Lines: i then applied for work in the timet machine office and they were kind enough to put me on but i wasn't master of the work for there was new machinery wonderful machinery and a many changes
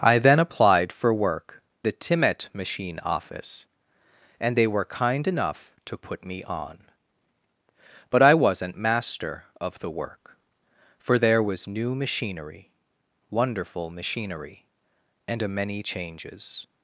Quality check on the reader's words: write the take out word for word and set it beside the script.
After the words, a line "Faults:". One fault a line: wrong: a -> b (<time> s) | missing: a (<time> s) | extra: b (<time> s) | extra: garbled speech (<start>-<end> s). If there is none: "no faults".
i then applied for work the timet machine office and they were kind enough to put me on but i wasn't master of the work for there was new machinery wonderful machinery and a many changes
Faults:
missing: in (1.6 s)